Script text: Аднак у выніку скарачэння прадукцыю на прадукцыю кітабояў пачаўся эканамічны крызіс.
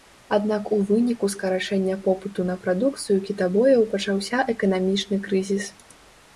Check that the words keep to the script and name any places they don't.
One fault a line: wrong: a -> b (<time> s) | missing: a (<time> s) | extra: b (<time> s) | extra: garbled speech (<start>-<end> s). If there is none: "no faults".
wrong: прадукцыю -> попыту (2.1 s)